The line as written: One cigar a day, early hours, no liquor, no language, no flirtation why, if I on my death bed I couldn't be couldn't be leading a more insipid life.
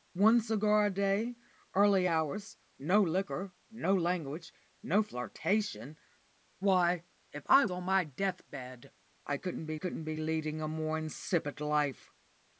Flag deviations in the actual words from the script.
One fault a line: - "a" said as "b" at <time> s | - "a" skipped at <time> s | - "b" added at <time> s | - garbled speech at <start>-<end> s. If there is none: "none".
none